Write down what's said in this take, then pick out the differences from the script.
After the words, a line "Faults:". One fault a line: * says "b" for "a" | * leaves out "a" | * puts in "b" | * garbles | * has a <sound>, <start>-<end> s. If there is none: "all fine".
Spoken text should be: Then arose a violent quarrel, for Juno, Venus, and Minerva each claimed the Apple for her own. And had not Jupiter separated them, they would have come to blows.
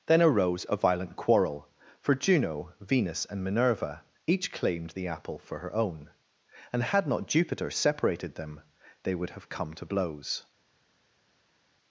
Then arose a violent quarrel, for Juno, Venus, and Minerva each claimed the Apple for her own. And had not Jupiter separated them, they would have come to blows.
Faults:
all fine